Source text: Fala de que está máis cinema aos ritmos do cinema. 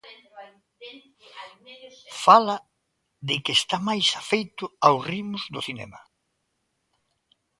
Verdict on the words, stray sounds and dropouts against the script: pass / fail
fail